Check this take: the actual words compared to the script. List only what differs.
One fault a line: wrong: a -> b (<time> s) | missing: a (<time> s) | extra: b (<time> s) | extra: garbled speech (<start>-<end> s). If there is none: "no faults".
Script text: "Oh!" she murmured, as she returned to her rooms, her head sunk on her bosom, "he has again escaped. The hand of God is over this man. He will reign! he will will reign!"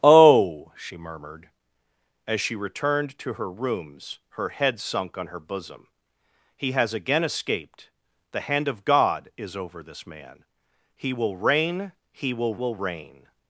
no faults